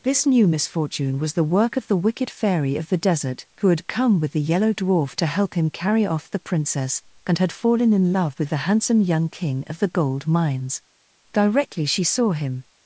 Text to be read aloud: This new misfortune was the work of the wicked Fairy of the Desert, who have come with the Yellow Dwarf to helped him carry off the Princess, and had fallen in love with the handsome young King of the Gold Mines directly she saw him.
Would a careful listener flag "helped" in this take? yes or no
yes